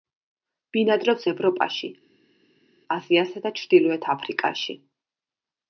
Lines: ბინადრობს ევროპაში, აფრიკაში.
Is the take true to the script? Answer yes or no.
no